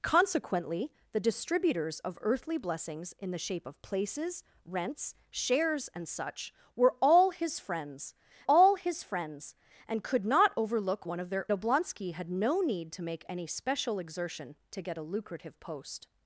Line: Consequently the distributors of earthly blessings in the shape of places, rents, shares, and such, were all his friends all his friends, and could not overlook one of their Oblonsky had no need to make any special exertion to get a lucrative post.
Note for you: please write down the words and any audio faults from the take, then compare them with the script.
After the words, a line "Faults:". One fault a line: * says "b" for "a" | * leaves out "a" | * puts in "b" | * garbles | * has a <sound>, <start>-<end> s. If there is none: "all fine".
Consequently the distributors of earthly blessings in the shape of places, rents, shares, and such, were all his friends all his friends, and could not overlook one of their Oblonsky had no need to make any special exertion to get a lucrative post.
Faults:
all fine